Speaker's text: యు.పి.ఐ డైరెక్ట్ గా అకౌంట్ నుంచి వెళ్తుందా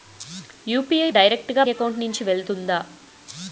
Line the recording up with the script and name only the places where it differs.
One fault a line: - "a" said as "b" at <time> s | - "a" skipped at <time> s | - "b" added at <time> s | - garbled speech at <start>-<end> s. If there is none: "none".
none